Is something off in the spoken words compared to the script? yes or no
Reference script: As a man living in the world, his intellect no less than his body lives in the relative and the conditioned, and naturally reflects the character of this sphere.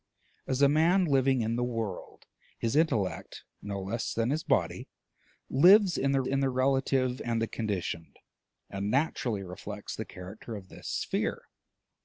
yes